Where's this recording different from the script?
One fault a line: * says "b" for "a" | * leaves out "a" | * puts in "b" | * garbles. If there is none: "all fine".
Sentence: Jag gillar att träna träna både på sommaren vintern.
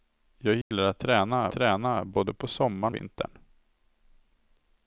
all fine